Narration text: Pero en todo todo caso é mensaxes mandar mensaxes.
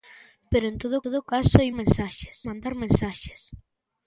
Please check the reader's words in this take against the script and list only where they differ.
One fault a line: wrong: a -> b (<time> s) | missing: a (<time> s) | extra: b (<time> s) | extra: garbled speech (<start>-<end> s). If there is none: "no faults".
no faults